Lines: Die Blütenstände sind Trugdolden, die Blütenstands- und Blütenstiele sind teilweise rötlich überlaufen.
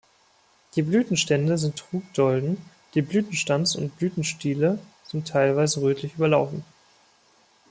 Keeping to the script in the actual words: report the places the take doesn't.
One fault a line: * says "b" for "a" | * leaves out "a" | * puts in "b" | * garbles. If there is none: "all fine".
all fine